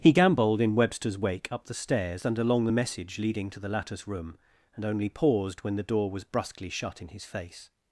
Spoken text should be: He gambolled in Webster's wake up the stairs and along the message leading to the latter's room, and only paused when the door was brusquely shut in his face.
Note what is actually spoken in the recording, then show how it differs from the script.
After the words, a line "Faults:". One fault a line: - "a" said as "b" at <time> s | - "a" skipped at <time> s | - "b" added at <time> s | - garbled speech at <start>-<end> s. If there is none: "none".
He gambolled in Webster's wake up the stairs and along the message leading to the latter's room, and only paused when the door was brusquely shut in his face.
Faults:
none